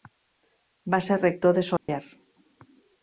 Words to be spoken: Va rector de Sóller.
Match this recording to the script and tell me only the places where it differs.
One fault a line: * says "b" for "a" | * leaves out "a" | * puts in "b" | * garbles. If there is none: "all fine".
* puts in "ser"